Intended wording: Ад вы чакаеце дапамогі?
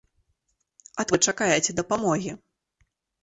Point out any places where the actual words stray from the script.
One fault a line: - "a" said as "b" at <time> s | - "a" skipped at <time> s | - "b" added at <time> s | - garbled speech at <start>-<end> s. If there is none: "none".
none